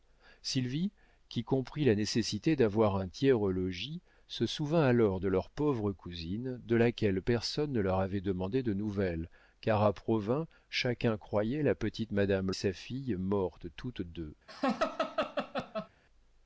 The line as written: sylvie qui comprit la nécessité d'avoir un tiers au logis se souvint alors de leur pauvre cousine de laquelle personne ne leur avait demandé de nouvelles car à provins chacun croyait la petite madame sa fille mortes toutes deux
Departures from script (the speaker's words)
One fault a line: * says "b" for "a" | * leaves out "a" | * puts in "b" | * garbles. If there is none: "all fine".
all fine